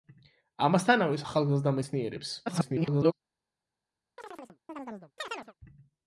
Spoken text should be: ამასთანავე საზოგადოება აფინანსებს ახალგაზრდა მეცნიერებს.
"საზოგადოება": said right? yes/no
no